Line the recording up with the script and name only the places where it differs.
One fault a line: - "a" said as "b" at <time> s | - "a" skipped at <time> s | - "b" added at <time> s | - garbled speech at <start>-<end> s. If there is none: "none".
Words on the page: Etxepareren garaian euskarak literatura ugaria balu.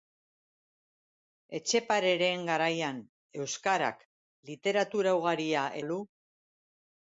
none